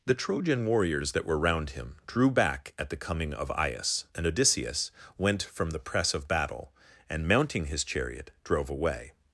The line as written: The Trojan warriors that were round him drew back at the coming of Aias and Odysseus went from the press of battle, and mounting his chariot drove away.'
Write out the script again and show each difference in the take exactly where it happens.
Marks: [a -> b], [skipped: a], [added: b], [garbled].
The Trojan warriors that were round him drew back at the coming of Aias and Odysseus went from the press of battle, and mounting his chariot drove away.'